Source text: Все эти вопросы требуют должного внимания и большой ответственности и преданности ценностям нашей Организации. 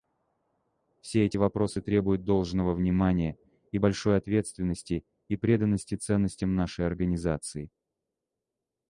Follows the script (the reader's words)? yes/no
yes